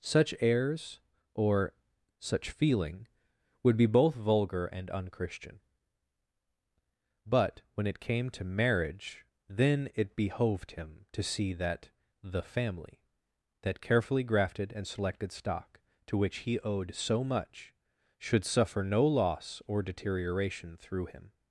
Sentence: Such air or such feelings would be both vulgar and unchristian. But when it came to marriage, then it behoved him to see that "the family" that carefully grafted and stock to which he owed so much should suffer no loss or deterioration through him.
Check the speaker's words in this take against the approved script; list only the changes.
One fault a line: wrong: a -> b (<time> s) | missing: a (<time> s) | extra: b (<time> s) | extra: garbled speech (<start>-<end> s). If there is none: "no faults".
wrong: air -> airs (0.4 s)
wrong: feelings -> feeling (2.5 s)
extra: selected (14.9 s)